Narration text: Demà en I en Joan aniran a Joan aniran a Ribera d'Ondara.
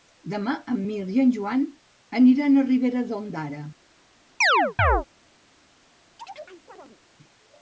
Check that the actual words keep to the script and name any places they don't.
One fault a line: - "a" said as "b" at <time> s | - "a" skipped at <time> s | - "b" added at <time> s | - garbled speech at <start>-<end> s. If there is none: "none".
- "Mirt" added at 0.9 s
- "Joan aniran a" skipped at 2.7 s